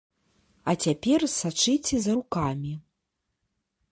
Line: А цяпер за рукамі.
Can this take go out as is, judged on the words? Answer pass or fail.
fail